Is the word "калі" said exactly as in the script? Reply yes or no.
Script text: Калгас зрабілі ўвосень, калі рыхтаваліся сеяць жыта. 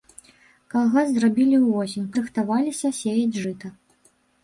no